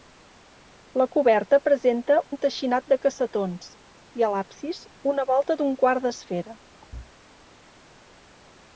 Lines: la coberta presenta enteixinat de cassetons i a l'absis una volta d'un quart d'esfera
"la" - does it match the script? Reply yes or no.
yes